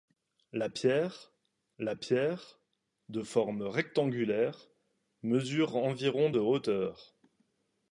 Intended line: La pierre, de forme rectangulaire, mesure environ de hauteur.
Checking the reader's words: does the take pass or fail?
fail